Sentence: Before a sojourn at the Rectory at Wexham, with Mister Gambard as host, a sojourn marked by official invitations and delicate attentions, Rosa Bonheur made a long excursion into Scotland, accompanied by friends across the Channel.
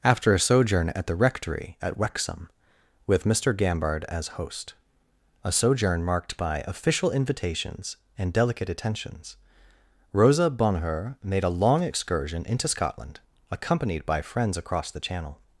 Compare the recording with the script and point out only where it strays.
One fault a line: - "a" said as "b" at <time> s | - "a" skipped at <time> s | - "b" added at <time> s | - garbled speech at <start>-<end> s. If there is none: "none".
- "Before" said as "After" at 0.0 s